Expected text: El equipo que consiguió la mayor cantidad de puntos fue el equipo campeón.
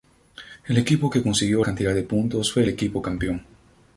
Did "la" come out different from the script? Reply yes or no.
yes